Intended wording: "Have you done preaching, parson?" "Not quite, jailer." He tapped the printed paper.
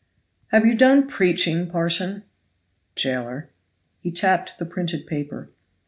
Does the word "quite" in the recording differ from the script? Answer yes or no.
yes